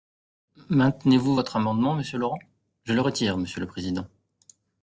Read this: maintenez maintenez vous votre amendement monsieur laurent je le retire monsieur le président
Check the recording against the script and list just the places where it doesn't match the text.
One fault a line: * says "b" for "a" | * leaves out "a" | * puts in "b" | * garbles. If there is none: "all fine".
* leaves out "maintenez"